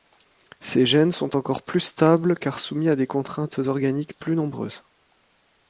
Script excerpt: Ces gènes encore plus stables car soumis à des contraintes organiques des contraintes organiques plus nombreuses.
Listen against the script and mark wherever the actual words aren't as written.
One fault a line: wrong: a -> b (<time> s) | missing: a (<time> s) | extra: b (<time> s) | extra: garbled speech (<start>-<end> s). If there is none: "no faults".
extra: sont (1.1 s)
missing: des contraintes organiques (4.2 s)